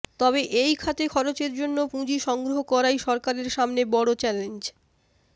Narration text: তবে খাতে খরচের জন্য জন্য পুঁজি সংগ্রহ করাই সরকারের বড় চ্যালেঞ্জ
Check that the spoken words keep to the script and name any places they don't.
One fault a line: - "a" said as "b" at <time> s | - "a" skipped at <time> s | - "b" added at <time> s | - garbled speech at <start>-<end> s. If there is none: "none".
- "এই" added at 0.6 s
- "জন্য" skipped at 1.8 s
- "সামনে" added at 3.5 s